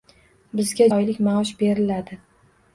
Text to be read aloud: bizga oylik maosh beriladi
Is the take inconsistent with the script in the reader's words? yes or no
no